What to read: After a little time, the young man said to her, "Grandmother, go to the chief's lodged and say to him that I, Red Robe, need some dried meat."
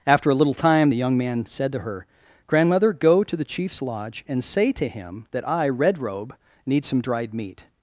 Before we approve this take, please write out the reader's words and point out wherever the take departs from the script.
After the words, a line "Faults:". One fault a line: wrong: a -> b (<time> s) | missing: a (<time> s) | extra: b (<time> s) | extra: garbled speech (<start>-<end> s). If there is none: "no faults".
After a little time, the young man said to her, "Grandmother, go to the chief's lodge and say to him that I, Red Robe, need some dried meat."
Faults:
wrong: lodged -> lodge (3.8 s)